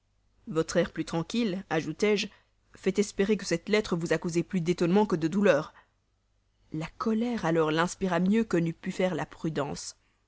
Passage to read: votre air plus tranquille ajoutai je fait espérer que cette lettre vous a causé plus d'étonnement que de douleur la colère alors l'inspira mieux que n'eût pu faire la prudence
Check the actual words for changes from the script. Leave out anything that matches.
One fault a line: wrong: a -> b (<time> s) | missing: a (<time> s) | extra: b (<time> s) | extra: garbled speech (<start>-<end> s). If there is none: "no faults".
no faults